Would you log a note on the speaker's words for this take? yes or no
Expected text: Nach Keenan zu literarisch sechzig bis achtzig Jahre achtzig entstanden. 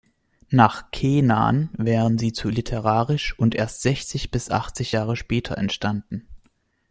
yes